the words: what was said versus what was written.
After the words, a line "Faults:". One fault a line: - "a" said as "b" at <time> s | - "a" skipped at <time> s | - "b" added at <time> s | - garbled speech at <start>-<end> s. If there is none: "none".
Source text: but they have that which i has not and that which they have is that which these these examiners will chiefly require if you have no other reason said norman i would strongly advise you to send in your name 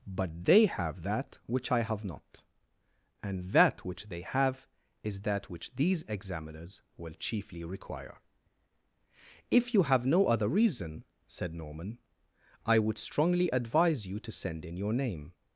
but they have that which i have not and that which they have is that which these examiners will chiefly require if you have no other reason said norman i would strongly advise you to send in your name
Faults:
- "has" said as "have" at 1.8 s
- "these" skipped at 6.0 s